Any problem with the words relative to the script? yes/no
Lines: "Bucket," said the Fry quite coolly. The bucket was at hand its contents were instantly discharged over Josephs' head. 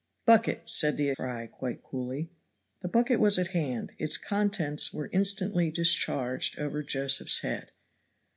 no